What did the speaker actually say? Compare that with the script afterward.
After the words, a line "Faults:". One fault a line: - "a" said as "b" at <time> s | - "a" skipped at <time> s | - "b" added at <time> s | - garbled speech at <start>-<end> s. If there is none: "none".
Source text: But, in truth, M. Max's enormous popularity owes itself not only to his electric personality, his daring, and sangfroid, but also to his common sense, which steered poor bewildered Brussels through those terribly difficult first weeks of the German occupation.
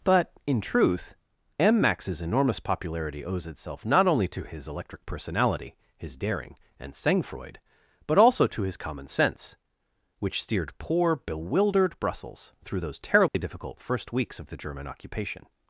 But, in truth, M. Max's enormous popularity owes itself not only to his electric personality, his daring, and sangfroid, but also to his common sense, which steered poor bewildered Brussels through those terribly difficult first weeks of the German occupation.
Faults:
none